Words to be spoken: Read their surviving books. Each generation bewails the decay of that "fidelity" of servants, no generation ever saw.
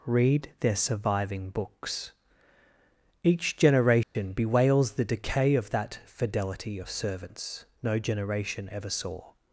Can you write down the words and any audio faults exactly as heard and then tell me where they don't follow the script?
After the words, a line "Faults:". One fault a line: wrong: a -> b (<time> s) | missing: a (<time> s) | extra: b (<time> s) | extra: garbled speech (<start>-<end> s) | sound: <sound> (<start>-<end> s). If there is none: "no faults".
Read their surviving books. Each generation bewails the decay of that "fidelity" of servants, no generation ever saw.
Faults:
sound: dropout (4.0-4.2 s)